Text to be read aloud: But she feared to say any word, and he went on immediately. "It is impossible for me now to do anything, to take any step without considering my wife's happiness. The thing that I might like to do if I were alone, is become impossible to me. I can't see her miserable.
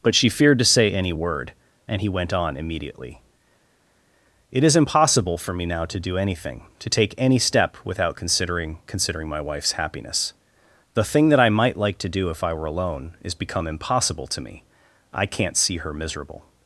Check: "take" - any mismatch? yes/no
no